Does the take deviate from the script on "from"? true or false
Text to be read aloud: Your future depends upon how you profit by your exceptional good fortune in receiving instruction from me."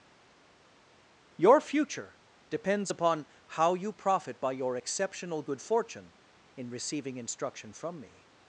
false